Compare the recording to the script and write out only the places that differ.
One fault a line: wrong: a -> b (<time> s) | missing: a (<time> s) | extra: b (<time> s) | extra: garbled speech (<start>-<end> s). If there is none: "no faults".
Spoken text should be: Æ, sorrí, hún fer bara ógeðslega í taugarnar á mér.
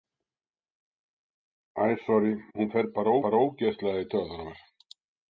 extra: bara (3.3 s)